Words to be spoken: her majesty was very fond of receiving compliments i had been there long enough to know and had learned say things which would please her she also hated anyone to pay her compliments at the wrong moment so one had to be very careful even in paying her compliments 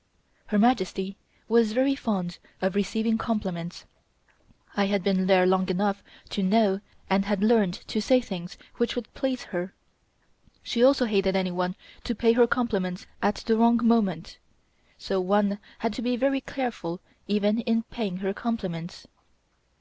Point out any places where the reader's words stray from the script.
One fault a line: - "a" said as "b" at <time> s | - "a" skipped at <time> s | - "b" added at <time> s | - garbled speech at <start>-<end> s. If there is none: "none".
- "to" added at 7.9 s